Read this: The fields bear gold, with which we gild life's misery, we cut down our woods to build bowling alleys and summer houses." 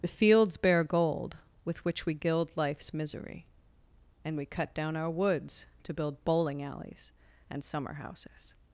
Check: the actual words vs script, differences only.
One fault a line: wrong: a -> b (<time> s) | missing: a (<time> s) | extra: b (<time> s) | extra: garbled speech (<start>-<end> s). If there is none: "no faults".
extra: and (4.2 s)